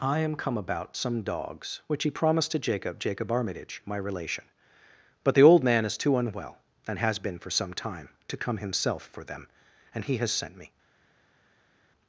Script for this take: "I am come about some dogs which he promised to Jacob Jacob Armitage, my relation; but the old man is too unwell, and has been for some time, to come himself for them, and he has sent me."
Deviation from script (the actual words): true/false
false